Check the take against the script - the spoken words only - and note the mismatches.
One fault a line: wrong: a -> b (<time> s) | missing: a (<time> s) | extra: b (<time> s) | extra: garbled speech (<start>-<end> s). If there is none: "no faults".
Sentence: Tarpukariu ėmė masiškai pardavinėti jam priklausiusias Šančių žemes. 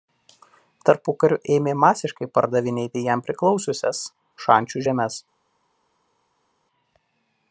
no faults